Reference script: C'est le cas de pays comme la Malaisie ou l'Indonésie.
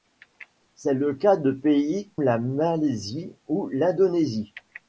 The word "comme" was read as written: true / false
false